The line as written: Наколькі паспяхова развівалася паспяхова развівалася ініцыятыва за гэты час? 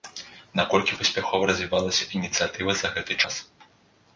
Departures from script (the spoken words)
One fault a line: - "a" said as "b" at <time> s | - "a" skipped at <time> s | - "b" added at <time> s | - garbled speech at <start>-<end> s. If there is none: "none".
- "паспяхова развівалася" skipped at 2.1 s